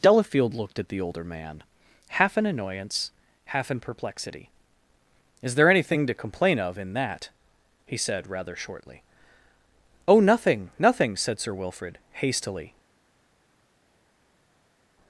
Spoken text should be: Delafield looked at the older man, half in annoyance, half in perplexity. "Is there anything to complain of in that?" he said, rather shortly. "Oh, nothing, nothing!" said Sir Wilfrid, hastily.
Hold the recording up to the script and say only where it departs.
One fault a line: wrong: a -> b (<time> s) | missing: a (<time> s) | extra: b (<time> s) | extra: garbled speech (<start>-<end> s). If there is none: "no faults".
no faults